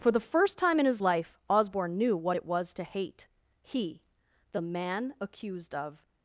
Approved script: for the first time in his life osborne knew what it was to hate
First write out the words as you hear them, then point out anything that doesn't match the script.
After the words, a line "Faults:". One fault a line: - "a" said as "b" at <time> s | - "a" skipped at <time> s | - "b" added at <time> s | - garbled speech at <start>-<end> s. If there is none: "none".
for the first time in his life osborne knew what it was to hate he the man accused of
Faults:
- "he the man accused of" added at 3.6 s